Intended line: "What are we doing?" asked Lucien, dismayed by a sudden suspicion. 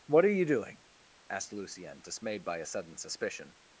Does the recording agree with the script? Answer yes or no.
no